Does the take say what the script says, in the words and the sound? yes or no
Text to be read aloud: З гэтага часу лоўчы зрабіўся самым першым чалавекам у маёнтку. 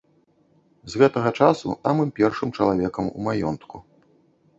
no